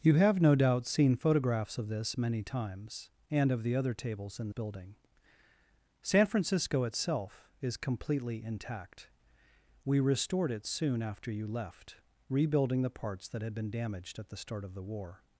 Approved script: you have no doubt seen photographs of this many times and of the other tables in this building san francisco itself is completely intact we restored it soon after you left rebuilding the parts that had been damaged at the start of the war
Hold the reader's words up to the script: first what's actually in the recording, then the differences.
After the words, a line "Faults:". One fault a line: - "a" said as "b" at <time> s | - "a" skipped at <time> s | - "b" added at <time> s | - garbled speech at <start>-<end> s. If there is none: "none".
you have no doubt seen photographs of this many times and of the other tables in building san francisco itself is completely intact we restored it soon after you left rebuilding the parts that had been damaged at the start of the war
Faults:
- "this" skipped at 4.5 s